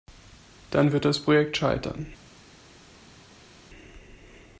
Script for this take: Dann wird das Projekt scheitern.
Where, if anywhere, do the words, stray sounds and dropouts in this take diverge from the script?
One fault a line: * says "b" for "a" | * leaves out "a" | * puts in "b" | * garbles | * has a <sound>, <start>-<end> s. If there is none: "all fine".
all fine